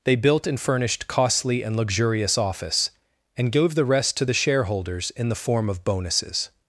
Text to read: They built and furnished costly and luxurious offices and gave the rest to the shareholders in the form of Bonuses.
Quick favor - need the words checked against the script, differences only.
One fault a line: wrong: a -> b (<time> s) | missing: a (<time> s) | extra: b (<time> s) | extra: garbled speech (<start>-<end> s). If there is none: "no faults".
wrong: offices -> office (2.4 s)